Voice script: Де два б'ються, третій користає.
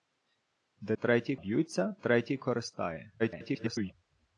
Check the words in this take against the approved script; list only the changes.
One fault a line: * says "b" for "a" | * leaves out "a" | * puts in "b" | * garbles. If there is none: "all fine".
* says "третій" for "два"
* garbles